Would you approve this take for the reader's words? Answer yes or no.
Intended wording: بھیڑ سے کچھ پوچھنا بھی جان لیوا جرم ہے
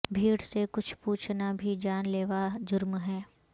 yes